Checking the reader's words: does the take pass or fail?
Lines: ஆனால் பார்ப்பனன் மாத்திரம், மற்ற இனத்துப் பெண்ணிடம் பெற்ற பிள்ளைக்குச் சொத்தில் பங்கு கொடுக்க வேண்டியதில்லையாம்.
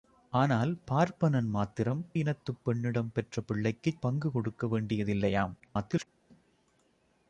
fail